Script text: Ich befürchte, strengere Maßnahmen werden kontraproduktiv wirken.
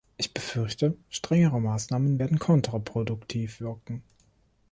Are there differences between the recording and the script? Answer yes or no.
no